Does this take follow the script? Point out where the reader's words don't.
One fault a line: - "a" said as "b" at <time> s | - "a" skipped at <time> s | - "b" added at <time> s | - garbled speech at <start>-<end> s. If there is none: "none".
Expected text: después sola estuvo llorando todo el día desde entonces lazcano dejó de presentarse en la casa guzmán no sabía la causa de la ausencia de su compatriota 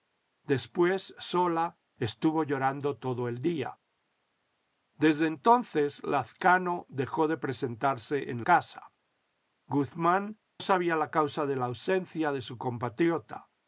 - "la" skipped at 8.4 s
- "no" skipped at 10.4 s